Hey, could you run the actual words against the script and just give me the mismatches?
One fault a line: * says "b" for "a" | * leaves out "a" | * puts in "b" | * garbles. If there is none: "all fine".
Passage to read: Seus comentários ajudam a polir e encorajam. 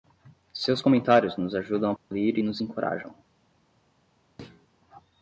* puts in "nos"
* puts in "nos"